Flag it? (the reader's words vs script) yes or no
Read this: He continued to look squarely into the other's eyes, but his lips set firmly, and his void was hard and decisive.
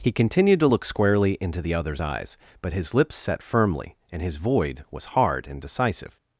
no